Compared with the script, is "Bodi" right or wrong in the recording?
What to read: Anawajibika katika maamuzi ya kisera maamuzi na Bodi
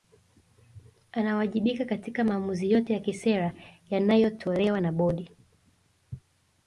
right